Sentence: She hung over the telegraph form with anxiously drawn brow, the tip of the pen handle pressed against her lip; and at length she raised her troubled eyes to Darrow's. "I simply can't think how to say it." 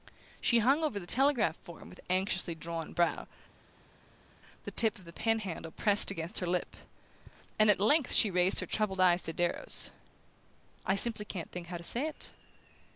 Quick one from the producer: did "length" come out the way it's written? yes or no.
yes